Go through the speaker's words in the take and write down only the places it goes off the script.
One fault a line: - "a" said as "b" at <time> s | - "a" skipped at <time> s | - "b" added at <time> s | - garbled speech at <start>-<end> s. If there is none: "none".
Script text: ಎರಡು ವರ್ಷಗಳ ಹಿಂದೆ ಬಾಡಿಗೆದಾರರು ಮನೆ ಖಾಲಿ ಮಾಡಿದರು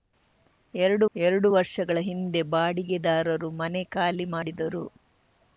- "ಎರಡು" added at 1.1 s